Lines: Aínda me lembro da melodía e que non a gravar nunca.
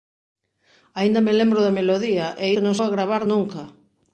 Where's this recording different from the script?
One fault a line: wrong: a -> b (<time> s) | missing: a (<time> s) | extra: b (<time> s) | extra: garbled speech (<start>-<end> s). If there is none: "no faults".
no faults